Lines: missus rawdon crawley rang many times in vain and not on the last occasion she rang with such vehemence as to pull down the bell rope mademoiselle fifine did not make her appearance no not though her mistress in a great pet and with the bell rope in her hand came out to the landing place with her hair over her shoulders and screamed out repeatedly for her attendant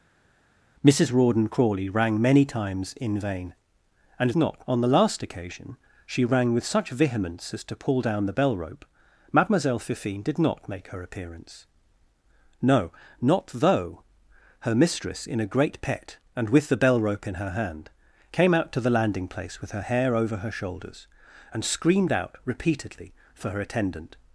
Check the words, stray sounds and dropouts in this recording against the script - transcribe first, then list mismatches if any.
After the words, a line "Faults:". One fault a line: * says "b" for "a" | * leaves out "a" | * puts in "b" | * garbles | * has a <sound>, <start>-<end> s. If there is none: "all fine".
missus rawdon crawley rang many times in vain and not on the last occasion she rang with such vehemence as to pull down the bell rope mademoiselle fifine did not make her appearance no not though her mistress in a great pet and with the bell rope in her hand came out to the landing place with her hair over her shoulders and screamed out repeatedly for her attendant
Faults:
all fine